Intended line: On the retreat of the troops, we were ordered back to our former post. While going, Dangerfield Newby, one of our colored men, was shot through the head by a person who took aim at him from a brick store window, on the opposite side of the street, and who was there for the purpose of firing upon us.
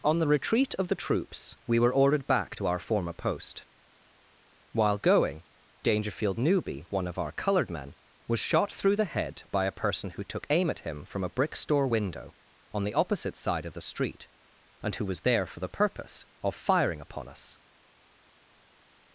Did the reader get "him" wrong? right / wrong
right